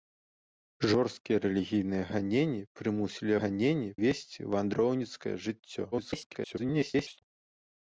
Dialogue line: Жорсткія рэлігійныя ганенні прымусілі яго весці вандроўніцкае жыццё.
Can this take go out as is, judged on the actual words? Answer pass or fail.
fail